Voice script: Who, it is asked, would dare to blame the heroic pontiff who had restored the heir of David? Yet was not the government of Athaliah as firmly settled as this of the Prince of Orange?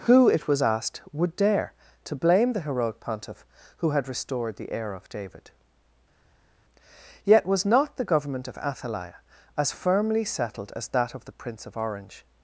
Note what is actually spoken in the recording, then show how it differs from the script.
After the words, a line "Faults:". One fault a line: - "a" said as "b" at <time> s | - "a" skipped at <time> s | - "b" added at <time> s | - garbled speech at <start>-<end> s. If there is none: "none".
Who, it was asked, would dare to blame the heroic pontiff who had restored the heir of David? Yet was not the government of Athaliah as firmly settled as that of the Prince of Orange?
Faults:
- "is" said as "was" at 0.5 s
- "this" said as "that" at 10.9 s